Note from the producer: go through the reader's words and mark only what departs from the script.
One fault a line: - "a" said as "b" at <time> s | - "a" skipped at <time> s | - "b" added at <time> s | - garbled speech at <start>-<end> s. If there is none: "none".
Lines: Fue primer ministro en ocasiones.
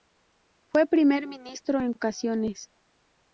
none